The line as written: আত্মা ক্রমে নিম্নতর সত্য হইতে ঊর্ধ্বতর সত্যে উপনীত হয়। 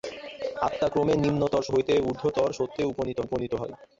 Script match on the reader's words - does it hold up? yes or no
no